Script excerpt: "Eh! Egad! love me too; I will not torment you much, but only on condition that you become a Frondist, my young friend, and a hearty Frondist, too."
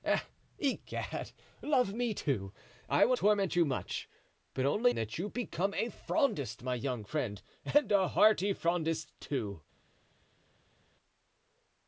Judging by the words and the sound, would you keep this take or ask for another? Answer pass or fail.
fail